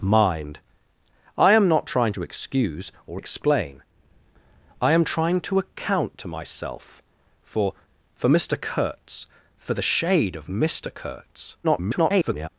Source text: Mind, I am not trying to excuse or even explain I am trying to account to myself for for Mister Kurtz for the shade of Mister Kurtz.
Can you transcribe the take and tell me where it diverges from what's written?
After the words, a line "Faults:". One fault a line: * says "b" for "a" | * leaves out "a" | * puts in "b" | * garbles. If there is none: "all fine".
Mind, I am not trying to excuse or explain I am trying to account to myself for for Mister Kurtz for the shade of Mister Kurtz. [garbled]
Faults:
* leaves out "even"
* garbles